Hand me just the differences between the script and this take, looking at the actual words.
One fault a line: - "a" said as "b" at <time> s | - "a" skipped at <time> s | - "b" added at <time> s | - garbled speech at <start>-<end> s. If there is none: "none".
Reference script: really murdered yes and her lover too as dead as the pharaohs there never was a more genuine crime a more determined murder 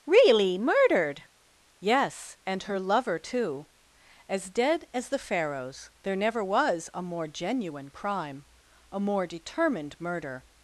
none